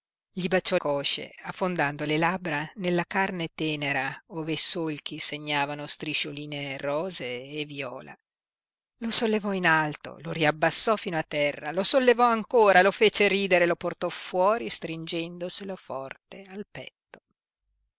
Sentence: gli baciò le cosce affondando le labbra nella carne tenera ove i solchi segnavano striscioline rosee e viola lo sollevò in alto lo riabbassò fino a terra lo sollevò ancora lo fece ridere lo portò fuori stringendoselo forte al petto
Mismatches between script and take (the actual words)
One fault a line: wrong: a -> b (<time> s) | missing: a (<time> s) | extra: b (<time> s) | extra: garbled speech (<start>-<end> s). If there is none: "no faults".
missing: le (0.8 s)